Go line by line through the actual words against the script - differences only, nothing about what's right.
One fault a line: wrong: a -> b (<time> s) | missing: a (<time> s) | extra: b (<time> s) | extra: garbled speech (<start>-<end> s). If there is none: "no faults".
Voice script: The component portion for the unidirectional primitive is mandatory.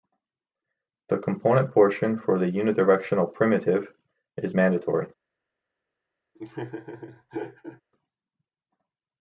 no faults